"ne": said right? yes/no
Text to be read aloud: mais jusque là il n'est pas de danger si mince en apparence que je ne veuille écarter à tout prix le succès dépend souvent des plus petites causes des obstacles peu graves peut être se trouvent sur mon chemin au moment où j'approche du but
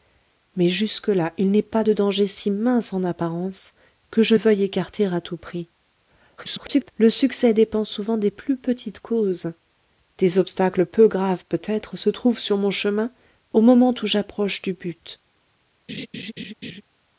no